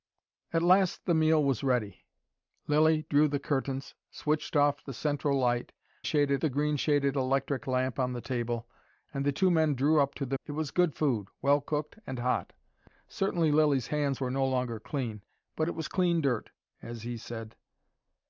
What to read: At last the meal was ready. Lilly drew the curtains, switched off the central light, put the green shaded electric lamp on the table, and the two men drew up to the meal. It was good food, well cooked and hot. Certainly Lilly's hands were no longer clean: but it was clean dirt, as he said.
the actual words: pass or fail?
fail